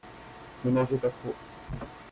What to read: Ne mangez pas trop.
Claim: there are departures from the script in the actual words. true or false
false